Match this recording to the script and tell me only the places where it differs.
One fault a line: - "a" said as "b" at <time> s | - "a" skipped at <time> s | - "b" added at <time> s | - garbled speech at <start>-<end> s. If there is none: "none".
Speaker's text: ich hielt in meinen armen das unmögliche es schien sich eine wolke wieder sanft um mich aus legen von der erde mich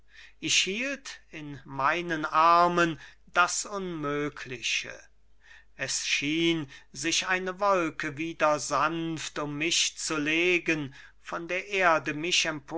- "aus" said as "zu" at 10.0 s